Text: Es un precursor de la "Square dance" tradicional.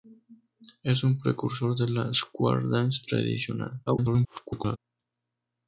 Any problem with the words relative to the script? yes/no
yes